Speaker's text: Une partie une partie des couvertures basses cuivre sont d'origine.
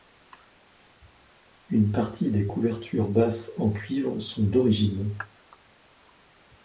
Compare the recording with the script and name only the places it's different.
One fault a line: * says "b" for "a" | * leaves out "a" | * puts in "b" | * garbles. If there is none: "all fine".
* leaves out "une partie"
* puts in "en"